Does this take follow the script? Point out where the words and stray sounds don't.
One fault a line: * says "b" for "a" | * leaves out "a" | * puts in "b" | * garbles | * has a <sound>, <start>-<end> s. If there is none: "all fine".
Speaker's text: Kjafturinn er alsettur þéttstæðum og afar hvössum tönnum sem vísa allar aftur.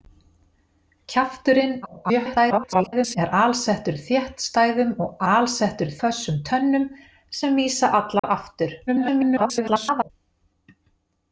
* garbles
* says "alsettur" for "afar"
* has a dropout, 8.2-8.2 s
* garbles